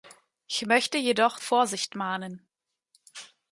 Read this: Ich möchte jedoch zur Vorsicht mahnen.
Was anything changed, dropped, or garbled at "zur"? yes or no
yes